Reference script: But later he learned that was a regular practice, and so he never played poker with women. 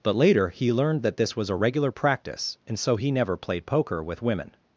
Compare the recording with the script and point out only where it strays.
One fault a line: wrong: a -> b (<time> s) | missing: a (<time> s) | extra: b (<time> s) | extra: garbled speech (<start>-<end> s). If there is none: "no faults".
extra: this (1.2 s)